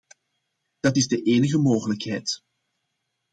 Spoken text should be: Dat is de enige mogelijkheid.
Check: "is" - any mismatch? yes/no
no